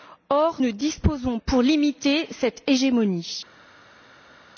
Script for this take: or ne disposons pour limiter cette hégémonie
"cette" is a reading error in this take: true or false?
false